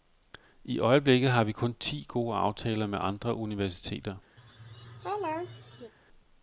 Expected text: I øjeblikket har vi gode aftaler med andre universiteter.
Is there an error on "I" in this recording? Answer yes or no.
no